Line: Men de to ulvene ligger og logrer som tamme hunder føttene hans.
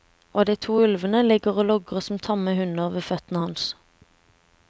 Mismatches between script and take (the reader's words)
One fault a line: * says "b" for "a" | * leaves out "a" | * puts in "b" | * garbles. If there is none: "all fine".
* says "Og" for "Men"
* puts in "ved"